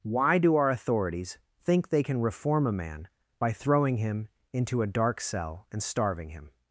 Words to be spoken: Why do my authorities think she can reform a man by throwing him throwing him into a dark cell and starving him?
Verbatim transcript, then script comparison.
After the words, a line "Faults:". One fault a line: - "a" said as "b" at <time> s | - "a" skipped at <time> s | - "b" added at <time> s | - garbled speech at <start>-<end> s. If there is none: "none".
Why do our authorities think they can reform a man by throwing him into a dark cell and starving him?
Faults:
- "my" said as "our" at 0.6 s
- "she" said as "they" at 1.9 s
- "throwing him" skipped at 4.3 s